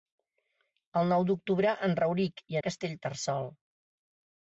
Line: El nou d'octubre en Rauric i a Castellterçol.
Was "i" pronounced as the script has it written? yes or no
yes